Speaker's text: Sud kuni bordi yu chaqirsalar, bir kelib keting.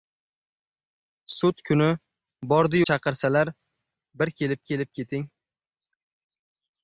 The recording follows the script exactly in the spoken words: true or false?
false